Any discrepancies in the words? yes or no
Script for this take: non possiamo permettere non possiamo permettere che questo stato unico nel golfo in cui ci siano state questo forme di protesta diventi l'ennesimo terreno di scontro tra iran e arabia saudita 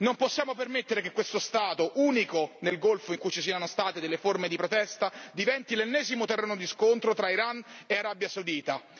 yes